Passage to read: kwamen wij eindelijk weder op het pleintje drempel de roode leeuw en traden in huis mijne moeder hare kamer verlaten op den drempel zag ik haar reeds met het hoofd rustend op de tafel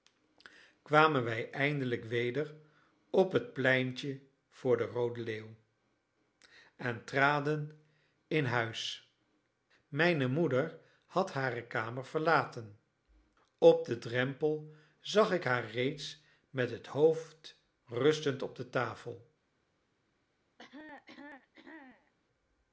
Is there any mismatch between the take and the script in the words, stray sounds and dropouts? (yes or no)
yes